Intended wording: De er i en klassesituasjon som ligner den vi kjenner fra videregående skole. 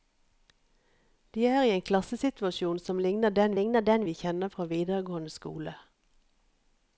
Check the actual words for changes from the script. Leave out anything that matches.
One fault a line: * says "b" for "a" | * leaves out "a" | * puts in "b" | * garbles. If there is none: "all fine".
* puts in "ligner den"